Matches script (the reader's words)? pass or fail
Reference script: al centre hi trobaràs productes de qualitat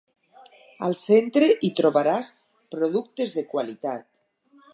pass